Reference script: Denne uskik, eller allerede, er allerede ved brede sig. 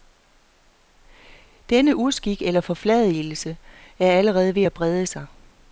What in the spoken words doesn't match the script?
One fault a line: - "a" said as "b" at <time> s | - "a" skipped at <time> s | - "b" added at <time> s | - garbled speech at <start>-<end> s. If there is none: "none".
- "allerede" said as "forfladigelse" at 2.6 s
- "at" added at 4.6 s